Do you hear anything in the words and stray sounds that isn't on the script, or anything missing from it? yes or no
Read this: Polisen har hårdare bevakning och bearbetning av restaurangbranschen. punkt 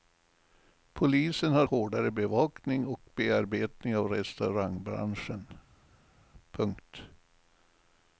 no